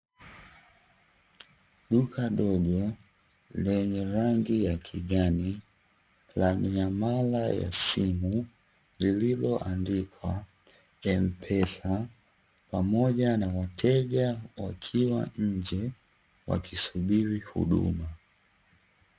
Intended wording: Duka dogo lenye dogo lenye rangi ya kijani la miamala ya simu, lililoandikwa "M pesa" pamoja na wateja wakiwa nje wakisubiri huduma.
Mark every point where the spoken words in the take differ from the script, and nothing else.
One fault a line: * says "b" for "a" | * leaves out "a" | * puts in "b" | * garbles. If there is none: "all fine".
* leaves out "dogo lenye"